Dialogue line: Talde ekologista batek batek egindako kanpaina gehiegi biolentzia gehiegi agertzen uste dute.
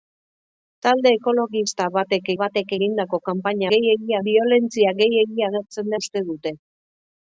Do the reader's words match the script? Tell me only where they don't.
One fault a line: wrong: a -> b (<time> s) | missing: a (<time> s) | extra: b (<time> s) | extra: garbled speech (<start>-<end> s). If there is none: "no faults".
no faults